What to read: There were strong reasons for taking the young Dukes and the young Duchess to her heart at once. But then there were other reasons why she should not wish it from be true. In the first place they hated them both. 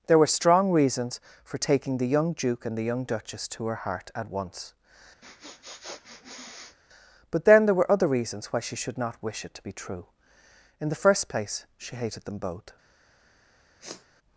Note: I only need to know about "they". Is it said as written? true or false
false